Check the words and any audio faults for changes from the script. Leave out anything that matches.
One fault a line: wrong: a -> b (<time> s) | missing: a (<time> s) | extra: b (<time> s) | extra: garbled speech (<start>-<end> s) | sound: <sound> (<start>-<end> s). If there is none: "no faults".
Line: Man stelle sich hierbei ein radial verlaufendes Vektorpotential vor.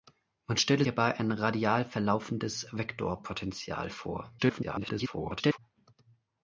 missing: sich (0.8 s)
extra: garbled speech (4.4-5.6 s)